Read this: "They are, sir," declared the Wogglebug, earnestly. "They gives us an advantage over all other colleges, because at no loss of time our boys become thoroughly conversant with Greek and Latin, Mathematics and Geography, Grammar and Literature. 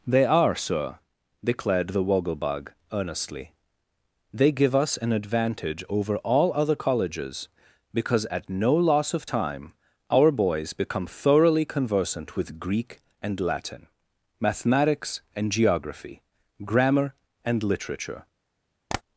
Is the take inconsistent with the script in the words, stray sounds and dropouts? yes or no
yes